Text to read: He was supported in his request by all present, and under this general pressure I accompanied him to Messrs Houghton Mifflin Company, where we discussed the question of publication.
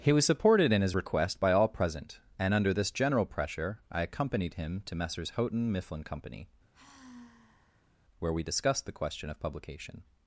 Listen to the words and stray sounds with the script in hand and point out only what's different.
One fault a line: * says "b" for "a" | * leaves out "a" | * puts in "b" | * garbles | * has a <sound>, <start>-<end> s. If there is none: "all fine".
* has a sigh, 6.7-7.9 s